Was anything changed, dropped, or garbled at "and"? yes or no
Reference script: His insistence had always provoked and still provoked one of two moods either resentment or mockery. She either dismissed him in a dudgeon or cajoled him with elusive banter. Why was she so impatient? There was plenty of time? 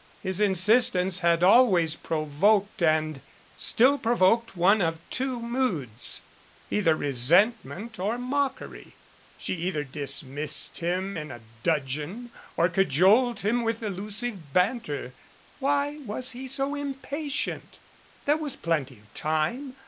no